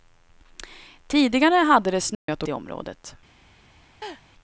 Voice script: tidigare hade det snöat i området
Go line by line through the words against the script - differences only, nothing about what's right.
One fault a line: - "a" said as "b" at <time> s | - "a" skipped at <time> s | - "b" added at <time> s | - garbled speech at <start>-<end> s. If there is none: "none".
none